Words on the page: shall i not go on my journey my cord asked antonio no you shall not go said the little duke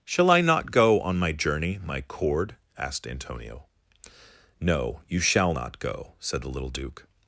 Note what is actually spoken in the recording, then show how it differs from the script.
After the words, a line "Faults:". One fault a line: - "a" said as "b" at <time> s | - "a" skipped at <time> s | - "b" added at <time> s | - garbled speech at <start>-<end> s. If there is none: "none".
shall i not go on my journey my cord asked antonio no you shall not go said the little duke
Faults:
none